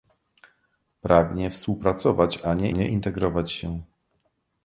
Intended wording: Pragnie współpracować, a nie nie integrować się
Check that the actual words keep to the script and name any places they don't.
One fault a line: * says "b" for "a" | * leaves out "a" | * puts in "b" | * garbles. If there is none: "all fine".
all fine